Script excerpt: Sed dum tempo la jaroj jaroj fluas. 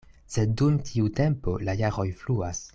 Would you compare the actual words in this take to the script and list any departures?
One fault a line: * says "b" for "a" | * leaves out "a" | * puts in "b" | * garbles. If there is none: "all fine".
* puts in "tiu"
* leaves out "jaroj"